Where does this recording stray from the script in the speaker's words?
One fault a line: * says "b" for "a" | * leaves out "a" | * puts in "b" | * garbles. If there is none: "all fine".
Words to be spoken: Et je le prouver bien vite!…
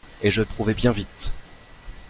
all fine